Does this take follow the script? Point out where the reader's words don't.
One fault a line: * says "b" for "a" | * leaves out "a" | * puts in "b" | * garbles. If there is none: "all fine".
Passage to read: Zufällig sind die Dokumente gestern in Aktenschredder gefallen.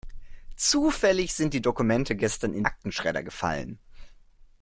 all fine